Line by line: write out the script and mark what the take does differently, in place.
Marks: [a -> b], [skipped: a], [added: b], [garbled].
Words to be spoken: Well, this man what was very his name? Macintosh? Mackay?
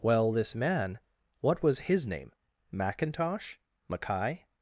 Well, this man what was [skipped: very] his name? Macintosh? Mackay?